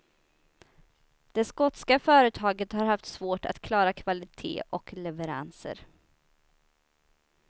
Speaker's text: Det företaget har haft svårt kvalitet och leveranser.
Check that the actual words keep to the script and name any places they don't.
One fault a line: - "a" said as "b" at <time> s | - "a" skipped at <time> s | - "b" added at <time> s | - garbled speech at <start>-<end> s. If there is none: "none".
- "skotska" added at 1.4 s
- "att klara" added at 3.5 s